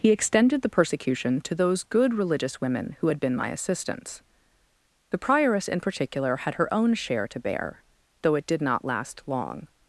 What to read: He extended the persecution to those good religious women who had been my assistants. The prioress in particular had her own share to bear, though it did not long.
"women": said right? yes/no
yes